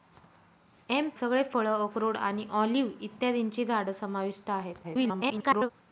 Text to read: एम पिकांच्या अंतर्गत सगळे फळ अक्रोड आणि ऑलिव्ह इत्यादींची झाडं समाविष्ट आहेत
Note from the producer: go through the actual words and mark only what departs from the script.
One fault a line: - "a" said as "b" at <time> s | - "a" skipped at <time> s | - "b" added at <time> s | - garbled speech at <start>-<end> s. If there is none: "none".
- "पिकांच्या अंतर्गत" skipped at 1.1 s
- garbled speech at 4.8-5.7 s